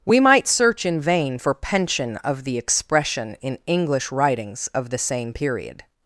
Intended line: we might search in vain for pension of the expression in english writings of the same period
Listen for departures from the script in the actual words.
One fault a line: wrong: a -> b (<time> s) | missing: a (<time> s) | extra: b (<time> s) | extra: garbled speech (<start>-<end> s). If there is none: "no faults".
no faults